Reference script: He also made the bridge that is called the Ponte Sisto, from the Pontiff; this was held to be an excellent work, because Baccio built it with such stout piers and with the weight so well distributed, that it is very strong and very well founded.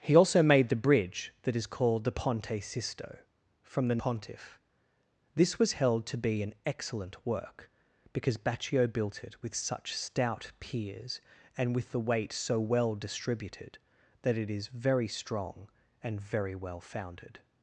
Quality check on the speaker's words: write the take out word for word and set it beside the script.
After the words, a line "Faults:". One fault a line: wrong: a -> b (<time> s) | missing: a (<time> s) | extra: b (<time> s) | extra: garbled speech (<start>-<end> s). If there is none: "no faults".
He also made the bridge that is called the Ponte Sisto, from the Pontiff; this was held to be an excellent work, because Baccio built it with such stout piers and with the weight so well distributed, that it is very strong and very well founded.
Faults:
no faults